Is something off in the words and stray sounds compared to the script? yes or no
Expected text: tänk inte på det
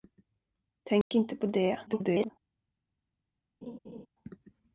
yes